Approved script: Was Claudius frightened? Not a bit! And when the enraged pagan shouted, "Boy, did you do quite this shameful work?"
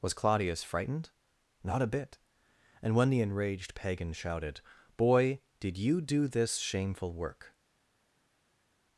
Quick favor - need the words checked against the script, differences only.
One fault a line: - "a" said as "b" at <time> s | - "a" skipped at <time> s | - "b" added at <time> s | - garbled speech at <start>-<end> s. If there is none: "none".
- "quite" skipped at 6.3 s